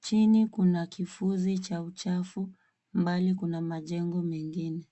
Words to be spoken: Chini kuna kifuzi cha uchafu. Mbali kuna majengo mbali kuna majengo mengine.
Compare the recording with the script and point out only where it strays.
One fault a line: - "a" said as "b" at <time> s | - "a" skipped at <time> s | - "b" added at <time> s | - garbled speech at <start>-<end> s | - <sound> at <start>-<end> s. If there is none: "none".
- "mbali kuna majengo" skipped at 4.2 s